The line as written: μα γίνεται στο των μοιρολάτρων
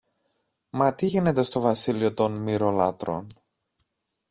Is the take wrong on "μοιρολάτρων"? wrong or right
right